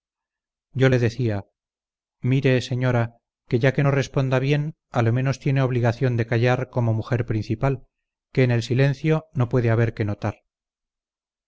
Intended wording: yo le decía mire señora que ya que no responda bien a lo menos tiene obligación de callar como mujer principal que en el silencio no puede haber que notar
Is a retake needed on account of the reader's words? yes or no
no